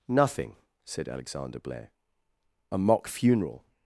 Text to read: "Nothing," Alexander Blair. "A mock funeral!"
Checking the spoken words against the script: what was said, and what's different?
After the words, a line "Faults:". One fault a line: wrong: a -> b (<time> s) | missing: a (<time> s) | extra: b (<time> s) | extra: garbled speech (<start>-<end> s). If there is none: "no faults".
"Nothing," said Alexander Blair. "A mock funeral!"
Faults:
extra: said (0.8 s)